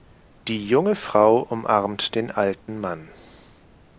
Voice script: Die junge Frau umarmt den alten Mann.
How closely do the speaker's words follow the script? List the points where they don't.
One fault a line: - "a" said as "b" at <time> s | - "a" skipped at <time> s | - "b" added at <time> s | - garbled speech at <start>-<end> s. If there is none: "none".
none